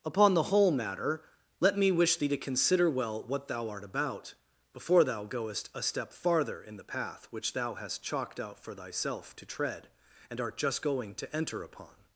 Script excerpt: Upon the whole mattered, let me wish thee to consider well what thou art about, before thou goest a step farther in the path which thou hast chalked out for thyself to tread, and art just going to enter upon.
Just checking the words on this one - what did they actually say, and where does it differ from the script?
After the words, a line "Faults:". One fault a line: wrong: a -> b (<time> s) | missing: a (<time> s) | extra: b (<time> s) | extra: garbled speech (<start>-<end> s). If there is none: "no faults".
Upon the whole matter, let me wish thee to consider well what thou art about, before thou goest a step farther in the path which thou hast chalked out for thyself to tread, and art just going to enter upon.
Faults:
wrong: mattered -> matter (0.7 s)